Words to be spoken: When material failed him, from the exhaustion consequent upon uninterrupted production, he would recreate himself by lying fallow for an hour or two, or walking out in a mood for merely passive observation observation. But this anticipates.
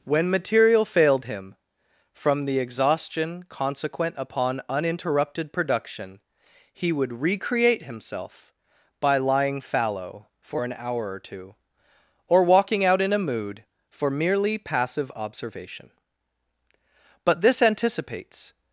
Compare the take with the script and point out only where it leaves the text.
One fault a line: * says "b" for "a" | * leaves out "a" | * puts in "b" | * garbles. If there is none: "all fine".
* leaves out "observation"